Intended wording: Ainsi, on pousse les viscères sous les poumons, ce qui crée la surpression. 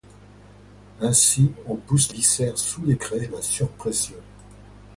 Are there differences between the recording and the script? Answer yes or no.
yes